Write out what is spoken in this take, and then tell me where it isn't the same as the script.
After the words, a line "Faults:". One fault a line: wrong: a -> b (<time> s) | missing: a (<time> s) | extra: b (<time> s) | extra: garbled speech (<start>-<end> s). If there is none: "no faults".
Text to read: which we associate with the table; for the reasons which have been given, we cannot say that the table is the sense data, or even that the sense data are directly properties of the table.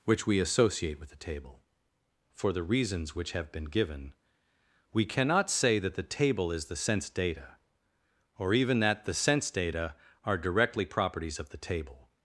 which we associate with the table; for the reasons which have been given, we cannot say that the table is the sense data, or even that the sense data are directly properties of the table.
Faults:
no faults